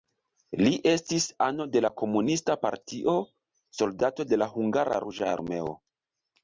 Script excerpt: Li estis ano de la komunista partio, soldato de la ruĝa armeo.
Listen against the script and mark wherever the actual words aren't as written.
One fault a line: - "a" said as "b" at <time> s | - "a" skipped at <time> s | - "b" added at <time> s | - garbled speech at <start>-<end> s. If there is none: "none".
- "hungara" added at 4.6 s